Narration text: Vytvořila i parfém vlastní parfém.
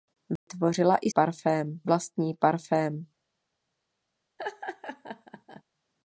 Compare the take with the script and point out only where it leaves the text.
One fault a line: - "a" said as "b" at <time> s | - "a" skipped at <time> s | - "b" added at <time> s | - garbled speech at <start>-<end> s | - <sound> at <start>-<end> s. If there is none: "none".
- dropout at 0.4-0.5 s
- laugh at 4.4-5.6 s